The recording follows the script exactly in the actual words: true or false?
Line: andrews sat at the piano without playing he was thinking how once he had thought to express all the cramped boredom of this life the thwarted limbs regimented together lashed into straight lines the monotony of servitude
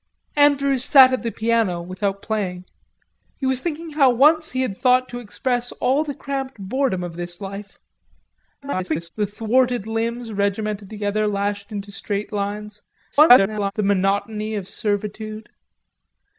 false